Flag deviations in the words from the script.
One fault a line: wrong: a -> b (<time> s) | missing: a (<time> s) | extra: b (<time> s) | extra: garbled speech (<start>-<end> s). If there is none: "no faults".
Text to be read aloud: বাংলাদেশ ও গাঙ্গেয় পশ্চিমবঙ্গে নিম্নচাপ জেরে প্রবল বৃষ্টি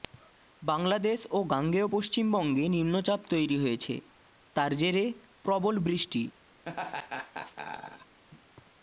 extra: তৈরি হয়েছে তার (3.3 s)